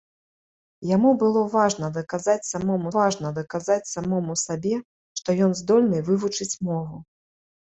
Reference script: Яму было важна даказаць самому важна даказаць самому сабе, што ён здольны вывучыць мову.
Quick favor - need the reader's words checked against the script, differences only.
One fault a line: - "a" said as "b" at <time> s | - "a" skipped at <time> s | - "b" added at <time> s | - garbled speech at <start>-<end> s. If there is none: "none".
none